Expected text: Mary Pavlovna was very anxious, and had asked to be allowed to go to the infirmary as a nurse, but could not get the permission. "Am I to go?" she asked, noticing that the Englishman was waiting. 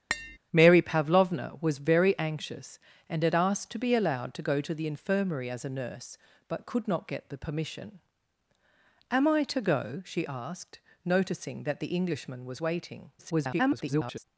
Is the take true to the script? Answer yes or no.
no